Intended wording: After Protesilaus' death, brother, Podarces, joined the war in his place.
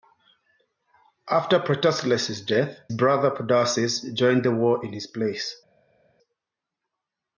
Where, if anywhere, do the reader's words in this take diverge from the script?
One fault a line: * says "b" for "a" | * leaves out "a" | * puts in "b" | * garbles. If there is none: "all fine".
all fine